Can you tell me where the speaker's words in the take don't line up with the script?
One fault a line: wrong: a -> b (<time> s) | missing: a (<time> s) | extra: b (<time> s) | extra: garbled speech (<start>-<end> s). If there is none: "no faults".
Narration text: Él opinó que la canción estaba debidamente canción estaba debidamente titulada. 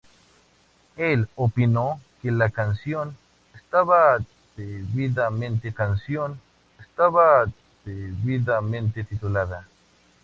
no faults